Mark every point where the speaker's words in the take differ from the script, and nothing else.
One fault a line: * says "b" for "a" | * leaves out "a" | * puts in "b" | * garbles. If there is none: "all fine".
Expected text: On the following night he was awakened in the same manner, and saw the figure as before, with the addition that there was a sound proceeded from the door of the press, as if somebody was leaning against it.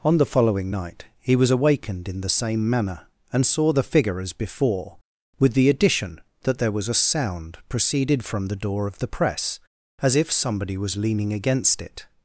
all fine